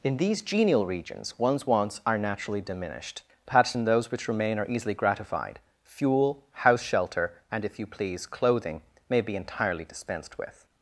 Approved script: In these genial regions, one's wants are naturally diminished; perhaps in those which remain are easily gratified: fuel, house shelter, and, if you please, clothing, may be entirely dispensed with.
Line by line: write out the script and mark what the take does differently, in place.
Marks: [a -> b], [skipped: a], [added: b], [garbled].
In these genial regions, one's wants are naturally diminished; perhaps in those which remain are easily gratified: fuel, house shelter, and, if you please, clothing, may be entirely dispensed with.